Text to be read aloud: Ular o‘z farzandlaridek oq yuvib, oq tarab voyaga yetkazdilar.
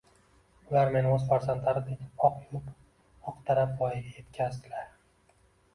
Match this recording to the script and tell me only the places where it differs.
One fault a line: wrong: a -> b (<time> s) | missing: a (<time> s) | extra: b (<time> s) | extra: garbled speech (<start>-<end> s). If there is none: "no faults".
extra: meni (0.9 s)